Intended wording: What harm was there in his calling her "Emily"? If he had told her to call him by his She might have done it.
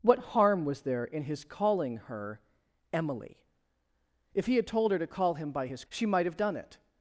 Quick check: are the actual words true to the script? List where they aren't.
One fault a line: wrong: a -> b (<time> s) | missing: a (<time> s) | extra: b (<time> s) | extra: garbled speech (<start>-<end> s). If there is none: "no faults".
no faults